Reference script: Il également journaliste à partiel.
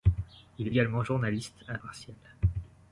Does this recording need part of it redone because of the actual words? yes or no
no